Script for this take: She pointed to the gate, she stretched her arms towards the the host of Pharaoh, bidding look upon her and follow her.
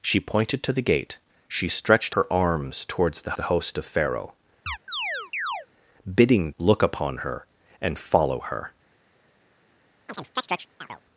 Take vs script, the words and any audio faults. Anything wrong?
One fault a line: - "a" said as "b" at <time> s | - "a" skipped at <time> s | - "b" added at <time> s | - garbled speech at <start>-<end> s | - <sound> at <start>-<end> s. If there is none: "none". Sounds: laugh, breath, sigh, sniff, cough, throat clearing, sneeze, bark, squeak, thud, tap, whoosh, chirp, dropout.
- chirp at 4.7-5.7 s
- chirp at 10.1-11.0 s